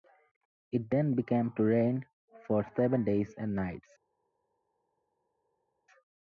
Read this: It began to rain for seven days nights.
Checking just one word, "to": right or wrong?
right